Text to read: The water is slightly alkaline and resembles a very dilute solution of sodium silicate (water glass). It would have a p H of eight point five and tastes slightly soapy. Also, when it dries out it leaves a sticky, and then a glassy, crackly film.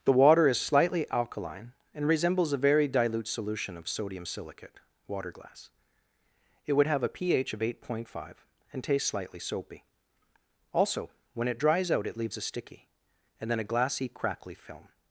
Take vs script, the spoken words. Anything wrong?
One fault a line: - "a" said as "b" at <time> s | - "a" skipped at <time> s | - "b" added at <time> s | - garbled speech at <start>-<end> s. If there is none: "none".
none